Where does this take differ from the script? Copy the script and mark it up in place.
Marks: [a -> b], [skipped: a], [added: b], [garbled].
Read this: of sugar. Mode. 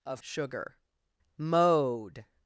of sugar. Mode.